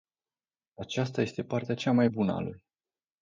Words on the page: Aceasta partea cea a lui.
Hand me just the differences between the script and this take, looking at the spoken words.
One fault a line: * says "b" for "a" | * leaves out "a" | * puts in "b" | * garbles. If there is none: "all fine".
* puts in "este"
* puts in "mai bună"